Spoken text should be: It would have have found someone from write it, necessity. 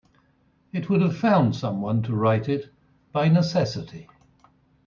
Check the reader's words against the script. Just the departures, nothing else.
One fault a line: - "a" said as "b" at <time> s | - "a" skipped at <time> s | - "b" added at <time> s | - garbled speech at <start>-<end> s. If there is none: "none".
- "have" skipped at 1.1 s
- "from" said as "to" at 2.0 s
- "by" added at 3.1 s